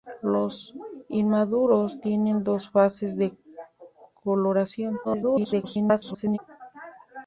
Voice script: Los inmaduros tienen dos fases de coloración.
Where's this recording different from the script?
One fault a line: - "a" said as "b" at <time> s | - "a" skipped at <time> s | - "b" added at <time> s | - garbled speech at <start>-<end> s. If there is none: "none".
- garbled speech at 5.0-6.4 s